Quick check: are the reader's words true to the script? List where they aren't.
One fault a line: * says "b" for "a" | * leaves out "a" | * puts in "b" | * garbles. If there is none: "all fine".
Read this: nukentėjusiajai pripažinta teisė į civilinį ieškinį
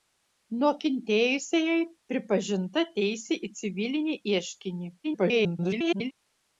* garbles